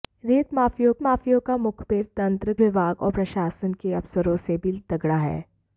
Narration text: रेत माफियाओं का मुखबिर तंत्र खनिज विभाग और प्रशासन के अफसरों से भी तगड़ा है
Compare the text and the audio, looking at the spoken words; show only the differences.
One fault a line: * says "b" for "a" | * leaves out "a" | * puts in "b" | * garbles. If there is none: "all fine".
* puts in "माफियाओं"
* leaves out "खनिज"